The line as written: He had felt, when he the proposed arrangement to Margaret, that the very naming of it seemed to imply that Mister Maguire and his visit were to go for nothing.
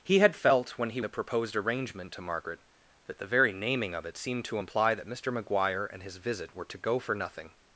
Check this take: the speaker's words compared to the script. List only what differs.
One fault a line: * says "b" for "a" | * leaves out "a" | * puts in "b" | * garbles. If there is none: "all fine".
all fine